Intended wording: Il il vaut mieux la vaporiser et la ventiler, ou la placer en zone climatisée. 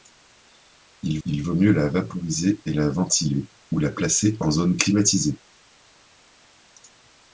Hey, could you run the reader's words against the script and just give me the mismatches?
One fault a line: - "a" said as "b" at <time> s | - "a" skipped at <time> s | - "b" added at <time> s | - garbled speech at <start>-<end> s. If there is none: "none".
none